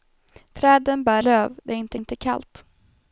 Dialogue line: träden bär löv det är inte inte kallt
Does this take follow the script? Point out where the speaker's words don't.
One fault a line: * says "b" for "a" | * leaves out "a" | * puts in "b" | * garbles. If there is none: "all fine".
all fine